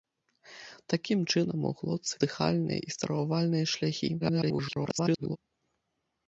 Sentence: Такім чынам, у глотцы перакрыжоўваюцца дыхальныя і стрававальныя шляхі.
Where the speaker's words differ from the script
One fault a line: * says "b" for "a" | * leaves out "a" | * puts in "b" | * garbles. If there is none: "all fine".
* leaves out "перакрыжоўваюцца"
* garbles